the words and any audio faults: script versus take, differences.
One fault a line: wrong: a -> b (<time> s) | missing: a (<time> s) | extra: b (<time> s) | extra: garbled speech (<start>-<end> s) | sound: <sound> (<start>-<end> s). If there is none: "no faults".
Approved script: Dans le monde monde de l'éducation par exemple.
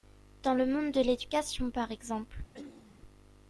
missing: monde (0.9 s)
sound: throat clearing (2.5-3.0 s)